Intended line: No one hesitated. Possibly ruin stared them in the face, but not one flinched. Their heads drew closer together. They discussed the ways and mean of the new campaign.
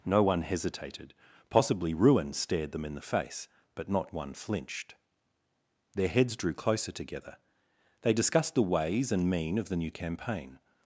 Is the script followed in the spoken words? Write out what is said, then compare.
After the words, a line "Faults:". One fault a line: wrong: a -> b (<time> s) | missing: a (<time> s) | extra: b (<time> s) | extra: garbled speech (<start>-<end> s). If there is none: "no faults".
No one hesitated. Possibly ruin stared them in the face, but not one flinched. Their heads drew closer together. They discussed the ways and mean of the new campaign.
Faults:
no faults